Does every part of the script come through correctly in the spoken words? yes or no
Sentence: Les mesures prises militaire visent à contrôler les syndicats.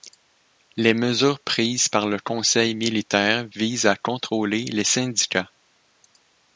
no